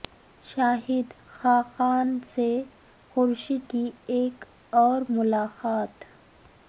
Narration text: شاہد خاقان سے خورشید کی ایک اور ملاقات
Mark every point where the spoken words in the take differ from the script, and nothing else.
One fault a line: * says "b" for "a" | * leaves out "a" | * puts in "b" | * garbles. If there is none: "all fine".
all fine